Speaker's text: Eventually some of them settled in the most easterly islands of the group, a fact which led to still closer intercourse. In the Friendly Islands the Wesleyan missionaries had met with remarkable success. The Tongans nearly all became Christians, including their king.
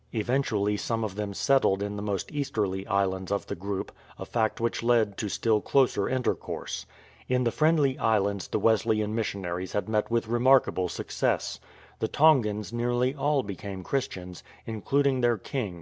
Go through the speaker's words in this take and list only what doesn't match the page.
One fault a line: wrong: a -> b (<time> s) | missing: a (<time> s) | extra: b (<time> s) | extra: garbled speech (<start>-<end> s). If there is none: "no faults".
no faults